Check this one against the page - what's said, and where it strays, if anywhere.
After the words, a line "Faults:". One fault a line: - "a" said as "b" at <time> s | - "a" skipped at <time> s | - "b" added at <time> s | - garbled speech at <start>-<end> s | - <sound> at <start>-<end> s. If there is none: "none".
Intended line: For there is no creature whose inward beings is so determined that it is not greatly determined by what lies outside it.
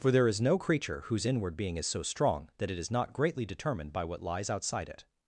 For there is no creature whose inward being is so strong that it is not greatly determined by what lies outside it.
Faults:
- "beings" said as "being" at 1.6 s
- "determined" said as "strong" at 2.0 s